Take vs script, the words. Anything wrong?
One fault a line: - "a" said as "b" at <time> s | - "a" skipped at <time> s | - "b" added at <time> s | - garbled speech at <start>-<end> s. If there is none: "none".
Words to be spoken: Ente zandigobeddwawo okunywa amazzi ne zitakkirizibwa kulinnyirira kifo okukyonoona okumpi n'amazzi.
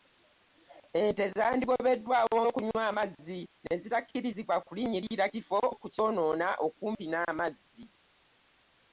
none